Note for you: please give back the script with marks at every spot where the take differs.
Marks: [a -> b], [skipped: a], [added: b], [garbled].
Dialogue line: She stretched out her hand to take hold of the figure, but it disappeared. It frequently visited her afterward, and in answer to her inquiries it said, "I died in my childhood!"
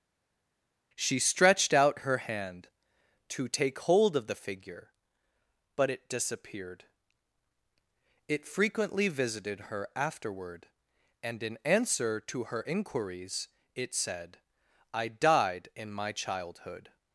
She stretched out her hand to take hold of the figure, but it disappeared. It frequently visited her afterward, and in answer to her inquiries it said, "I died in my childhood!"